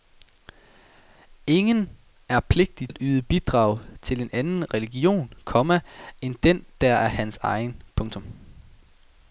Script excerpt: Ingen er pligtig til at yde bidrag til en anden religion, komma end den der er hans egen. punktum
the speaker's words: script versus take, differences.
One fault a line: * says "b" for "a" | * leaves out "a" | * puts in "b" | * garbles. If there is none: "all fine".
* leaves out "til"